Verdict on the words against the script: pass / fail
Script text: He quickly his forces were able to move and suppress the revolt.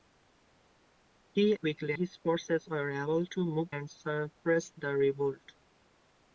pass